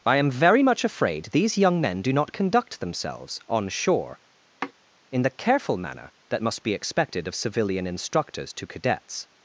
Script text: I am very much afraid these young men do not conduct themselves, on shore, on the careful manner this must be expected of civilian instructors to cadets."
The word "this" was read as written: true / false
false